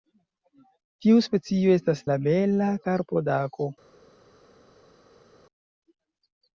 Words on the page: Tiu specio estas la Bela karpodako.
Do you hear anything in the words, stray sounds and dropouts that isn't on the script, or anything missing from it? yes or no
no